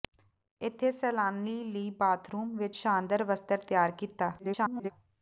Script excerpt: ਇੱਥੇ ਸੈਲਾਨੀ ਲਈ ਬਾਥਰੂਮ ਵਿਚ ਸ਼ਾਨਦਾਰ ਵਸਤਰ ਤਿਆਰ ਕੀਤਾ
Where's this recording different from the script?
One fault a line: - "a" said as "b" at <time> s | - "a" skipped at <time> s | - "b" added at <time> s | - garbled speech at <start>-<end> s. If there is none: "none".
- garbled speech at 4.4-4.9 s